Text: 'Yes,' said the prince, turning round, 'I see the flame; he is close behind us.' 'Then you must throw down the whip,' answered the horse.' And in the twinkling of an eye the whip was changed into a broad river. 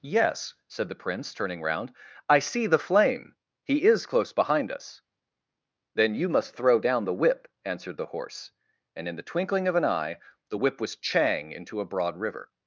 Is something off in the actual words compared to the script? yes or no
yes